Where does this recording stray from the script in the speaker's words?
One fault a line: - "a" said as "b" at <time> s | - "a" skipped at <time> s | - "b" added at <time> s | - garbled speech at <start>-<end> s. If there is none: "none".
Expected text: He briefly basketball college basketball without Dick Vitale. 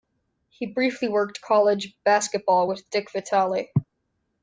- "basketball" said as "worked" at 1.1 s
- "without" said as "with" at 2.7 s